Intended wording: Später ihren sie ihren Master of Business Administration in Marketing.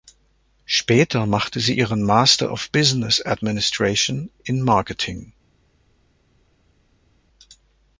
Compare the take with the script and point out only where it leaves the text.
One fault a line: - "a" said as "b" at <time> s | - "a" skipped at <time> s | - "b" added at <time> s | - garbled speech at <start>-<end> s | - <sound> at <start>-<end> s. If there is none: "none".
- "ihren" said as "machte" at 1.3 s